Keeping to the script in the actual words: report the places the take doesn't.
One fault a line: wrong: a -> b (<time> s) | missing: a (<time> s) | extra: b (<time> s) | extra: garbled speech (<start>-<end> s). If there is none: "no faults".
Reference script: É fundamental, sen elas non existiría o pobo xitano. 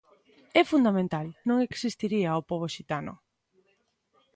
missing: sen elas (1.3 s)